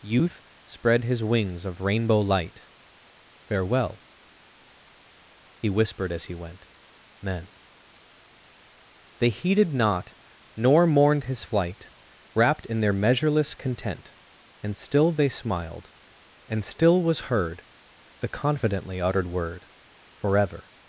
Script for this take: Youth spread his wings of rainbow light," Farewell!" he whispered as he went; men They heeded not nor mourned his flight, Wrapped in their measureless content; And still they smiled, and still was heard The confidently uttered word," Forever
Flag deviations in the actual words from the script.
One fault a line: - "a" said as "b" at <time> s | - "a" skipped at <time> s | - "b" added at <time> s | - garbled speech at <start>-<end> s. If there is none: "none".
none